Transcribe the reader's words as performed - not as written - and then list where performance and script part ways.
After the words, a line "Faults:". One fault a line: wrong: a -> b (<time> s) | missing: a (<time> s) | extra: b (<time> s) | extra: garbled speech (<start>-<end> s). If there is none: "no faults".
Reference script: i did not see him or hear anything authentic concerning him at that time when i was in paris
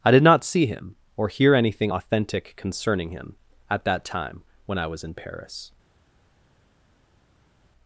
i did not see him or hear anything authentic concerning him at that time when i was in paris
Faults:
no faults